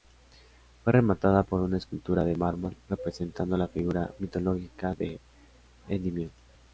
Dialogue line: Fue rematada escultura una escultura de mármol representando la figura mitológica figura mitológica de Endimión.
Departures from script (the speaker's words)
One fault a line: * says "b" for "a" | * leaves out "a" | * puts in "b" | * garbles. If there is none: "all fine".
* says "por" for "escultura"
* leaves out "figura mitológica"